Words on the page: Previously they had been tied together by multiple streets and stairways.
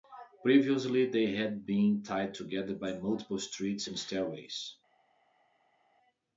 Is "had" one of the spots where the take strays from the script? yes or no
no